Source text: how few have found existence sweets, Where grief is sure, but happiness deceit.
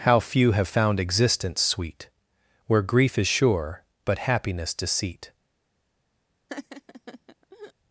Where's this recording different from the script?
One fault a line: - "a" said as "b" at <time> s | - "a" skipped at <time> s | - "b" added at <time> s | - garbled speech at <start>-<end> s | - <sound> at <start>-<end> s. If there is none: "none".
- "sweets" said as "sweet" at 1.6 s
- laugh at 6.5-7.7 s